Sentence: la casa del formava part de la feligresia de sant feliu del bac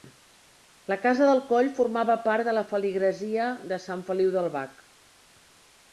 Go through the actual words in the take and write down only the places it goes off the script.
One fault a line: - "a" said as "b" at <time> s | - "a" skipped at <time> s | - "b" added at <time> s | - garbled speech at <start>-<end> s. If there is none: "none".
- "coll" added at 1.5 s